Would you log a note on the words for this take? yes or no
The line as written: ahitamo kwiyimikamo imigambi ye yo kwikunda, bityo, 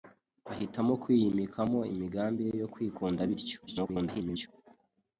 yes